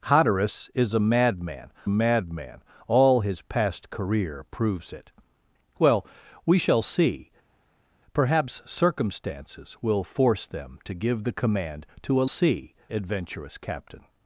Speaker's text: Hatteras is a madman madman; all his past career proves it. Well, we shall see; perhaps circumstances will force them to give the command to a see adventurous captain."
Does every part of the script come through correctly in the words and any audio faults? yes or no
yes